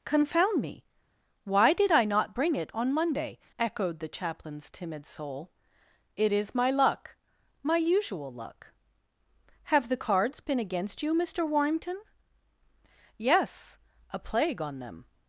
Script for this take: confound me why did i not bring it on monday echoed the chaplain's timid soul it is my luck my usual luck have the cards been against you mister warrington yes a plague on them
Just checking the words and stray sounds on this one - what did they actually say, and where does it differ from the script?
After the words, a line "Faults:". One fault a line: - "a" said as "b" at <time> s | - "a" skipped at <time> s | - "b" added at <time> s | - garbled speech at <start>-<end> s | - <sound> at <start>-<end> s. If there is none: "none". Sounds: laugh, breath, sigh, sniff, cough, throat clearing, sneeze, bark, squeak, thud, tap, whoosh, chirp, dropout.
confound me why did i not bring it on monday echoed the chaplain's timid soul it is my luck my usual luck have the cards been against you mister warrington yes a plague on them
Faults:
none